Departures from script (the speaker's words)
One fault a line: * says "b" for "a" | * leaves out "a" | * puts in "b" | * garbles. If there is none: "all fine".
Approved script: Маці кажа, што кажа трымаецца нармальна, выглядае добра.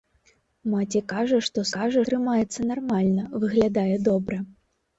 all fine